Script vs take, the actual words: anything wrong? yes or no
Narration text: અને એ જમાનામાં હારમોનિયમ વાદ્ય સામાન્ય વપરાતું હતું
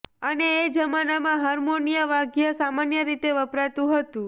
yes